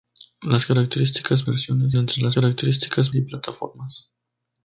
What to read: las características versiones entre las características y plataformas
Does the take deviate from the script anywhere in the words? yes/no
no